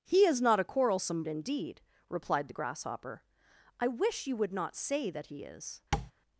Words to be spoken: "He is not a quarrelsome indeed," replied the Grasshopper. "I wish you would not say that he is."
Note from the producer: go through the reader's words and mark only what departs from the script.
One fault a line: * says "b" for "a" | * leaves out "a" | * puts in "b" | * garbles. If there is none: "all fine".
all fine